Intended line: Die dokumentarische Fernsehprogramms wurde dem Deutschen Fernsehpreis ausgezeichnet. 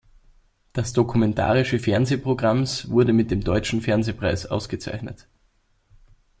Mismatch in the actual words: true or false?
true